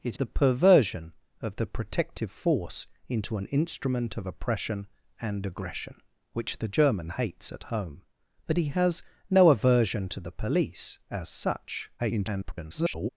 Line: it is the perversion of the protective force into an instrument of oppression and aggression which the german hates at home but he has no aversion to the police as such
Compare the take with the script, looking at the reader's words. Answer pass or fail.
fail